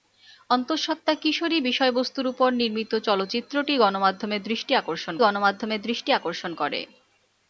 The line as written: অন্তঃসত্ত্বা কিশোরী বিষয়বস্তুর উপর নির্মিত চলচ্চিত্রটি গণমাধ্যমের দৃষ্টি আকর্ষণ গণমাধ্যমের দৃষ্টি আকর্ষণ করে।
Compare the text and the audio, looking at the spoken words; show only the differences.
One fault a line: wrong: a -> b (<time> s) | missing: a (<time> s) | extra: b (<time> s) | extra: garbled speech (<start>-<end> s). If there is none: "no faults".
no faults